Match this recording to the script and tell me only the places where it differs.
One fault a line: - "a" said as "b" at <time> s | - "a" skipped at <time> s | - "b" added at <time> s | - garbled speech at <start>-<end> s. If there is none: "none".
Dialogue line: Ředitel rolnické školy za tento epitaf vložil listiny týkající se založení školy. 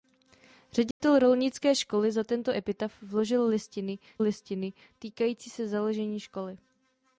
- "listiny" added at 4.2 s